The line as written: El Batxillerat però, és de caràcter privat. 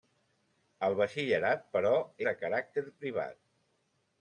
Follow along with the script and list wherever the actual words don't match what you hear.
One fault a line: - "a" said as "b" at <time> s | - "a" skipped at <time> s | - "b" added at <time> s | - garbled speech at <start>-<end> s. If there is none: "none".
- "és" skipped at 1.9 s